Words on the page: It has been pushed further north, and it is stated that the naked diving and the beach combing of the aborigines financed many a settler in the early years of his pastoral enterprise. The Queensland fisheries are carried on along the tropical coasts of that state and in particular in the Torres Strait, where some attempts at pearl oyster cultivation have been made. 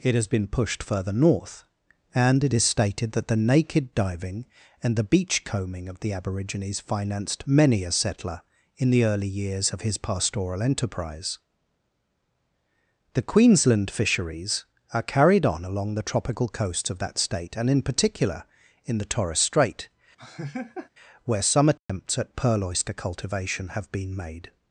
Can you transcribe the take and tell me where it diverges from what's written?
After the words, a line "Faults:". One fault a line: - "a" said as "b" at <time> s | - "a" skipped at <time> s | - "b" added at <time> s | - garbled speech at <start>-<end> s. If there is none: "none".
It has been pushed further north, and it is stated that the naked diving and the beach combing of the aborigines financed many a settler in the early years of his pastoral enterprise. The Queensland fisheries are carried on along the tropical coasts of that state and in particular in the Torres Strait, where some attempts at pearl oyster cultivation have been made.
Faults:
none